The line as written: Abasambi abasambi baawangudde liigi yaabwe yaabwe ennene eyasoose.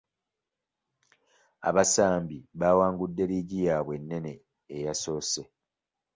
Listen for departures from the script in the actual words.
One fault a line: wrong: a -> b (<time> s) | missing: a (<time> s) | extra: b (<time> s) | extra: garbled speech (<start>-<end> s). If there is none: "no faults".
missing: abasambi (2.4 s)
missing: yaabwe (3.9 s)